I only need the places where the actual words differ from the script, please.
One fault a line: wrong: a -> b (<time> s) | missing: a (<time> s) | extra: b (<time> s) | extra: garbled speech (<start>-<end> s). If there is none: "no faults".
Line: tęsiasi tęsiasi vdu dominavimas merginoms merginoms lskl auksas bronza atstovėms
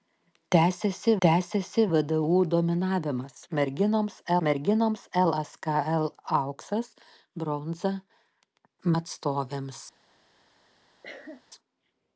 no faults